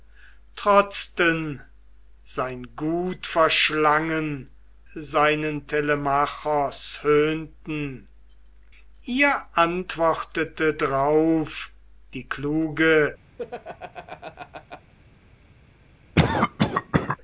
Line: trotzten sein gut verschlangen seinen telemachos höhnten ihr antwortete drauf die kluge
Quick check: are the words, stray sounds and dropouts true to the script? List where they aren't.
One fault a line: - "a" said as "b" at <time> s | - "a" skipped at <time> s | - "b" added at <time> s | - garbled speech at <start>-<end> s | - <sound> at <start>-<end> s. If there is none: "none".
- laugh at 13.4-14.9 s
- cough at 16.1-17.2 s